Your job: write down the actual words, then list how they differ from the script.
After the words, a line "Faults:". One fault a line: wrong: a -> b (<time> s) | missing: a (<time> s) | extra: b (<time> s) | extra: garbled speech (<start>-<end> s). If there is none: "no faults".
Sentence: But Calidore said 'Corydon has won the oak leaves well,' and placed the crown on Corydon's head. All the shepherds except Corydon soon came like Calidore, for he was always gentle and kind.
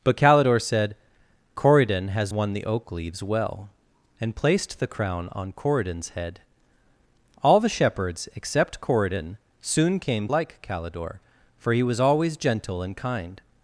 But Calidore said 'Corydon has won the oak leaves well,' and placed the crown on Corydon's head. All the shepherds except Corydon soon came like Calidore, for he was always gentle and kind.
Faults:
no faults